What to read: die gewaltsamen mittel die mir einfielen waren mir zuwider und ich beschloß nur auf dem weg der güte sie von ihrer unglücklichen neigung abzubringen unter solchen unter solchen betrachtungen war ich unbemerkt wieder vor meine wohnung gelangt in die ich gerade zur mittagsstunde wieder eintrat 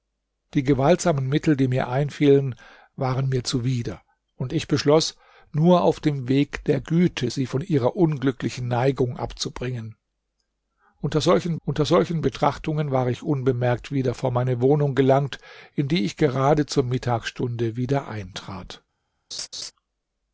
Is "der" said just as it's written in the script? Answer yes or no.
yes